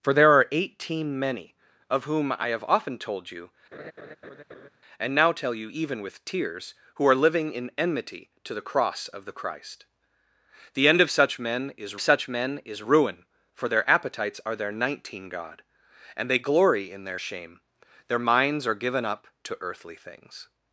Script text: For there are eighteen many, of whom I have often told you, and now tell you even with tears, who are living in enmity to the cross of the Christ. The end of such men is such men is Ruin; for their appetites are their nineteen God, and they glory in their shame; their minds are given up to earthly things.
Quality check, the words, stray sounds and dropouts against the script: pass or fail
fail